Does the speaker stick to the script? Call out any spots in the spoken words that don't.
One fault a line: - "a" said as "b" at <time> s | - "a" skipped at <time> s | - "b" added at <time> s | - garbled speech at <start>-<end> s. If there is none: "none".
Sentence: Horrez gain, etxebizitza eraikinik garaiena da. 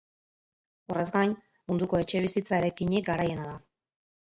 - "munduko" added at 1.7 s